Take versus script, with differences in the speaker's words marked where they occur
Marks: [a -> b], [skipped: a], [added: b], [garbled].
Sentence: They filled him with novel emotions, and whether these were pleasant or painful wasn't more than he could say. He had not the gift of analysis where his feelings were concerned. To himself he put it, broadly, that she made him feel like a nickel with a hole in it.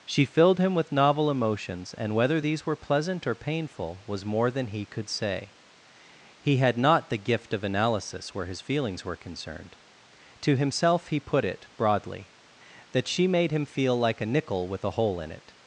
[They -> She] filled him with novel emotions, and whether these were pleasant or painful [wasn't -> was] more than he could say. He had not the gift of analysis where his feelings were concerned. To himself he put it, broadly, that she made him feel like a nickel with a hole in it.